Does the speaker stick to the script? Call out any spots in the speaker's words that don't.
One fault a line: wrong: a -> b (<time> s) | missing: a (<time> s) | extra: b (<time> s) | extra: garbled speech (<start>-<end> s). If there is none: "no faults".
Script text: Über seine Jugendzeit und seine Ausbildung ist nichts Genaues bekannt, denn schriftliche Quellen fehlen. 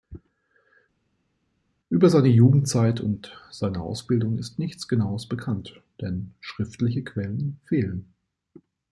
no faults